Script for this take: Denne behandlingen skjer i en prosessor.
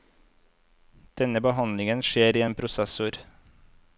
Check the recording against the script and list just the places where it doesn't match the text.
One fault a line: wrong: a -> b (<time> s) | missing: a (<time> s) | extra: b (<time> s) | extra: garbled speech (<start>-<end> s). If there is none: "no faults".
no faults